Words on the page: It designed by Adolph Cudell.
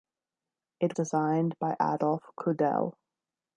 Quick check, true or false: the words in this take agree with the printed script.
true